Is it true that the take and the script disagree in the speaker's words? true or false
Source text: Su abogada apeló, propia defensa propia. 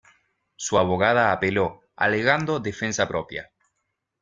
true